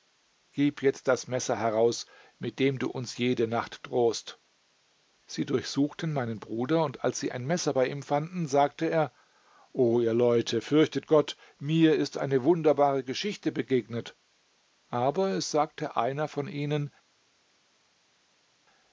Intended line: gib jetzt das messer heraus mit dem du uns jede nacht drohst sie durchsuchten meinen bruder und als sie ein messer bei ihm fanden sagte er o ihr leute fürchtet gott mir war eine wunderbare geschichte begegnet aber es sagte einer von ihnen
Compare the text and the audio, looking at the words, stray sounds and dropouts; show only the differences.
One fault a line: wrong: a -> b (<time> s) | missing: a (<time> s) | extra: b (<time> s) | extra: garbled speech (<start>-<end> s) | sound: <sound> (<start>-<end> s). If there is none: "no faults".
wrong: war -> ist (12.0 s)